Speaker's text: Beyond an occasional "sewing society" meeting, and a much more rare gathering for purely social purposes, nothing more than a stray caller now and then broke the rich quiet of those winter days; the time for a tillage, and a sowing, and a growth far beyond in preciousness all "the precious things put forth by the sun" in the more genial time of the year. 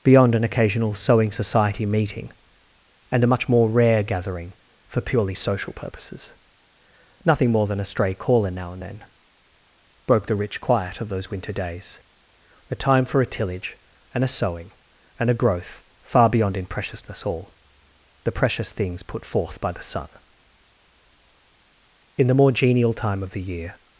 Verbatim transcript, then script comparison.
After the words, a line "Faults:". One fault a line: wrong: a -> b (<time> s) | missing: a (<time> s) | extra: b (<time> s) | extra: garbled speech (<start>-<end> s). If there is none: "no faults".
Beyond an occasional "sewing society" meeting, and a much more rare gathering for purely social purposes, nothing more than a stray caller now and then broke the rich quiet of those winter days; a time for a tillage, and a sowing, and a growth far beyond in preciousness all "the precious things put forth by the sun" in the more genial time of the year.
Faults:
wrong: the -> a (12.7 s)